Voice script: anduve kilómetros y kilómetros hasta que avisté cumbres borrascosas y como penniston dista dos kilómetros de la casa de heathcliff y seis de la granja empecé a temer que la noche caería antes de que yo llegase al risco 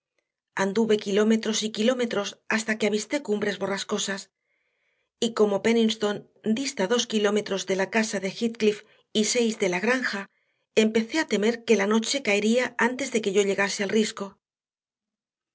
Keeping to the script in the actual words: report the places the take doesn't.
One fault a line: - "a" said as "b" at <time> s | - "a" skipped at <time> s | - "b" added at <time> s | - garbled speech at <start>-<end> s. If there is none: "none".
none